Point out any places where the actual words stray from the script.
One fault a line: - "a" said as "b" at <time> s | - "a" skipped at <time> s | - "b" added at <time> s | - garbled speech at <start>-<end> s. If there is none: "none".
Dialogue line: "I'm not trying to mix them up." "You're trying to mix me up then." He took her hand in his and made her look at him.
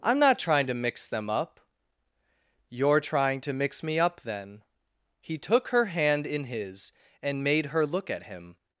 none